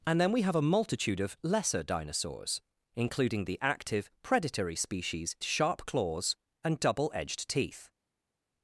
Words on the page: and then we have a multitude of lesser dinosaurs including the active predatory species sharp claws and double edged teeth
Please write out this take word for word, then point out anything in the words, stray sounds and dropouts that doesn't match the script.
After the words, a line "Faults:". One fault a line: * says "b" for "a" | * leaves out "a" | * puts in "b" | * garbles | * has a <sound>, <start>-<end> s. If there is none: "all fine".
and then we have a multitude of lesser dinosaurs including the active predatory species sharp claws and double edged teeth
Faults:
all fine